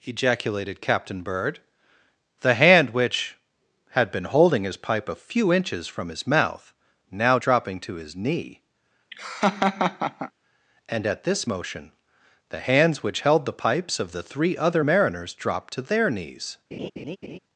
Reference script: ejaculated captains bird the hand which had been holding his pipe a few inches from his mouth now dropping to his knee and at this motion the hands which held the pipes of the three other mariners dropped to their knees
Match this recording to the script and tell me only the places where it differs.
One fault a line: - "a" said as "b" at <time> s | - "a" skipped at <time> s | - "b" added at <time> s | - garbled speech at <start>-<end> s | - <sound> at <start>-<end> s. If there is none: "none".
- "captains" said as "captain" at 0.8 s
- laugh at 9.1-10.3 s
- laugh at 16.7-17.4 s